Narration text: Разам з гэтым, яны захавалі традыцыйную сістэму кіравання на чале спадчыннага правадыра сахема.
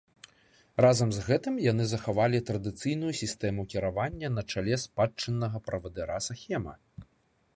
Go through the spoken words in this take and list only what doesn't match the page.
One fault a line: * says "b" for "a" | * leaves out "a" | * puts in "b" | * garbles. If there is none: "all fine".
all fine